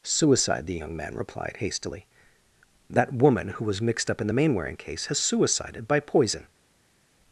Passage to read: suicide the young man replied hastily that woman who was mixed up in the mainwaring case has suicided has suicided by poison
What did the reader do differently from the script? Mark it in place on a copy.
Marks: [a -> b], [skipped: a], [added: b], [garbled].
suicide the young man replied hastily that woman who was mixed up in the mainwaring case has suicided [skipped: has suicided] by poison